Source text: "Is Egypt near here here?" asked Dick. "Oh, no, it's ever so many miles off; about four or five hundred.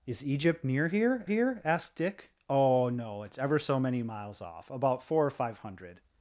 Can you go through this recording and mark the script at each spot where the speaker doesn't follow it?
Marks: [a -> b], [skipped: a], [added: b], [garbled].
"Is Egypt near here here?" asked Dick. "Oh, no, it's ever so many miles off; about four or five hundred.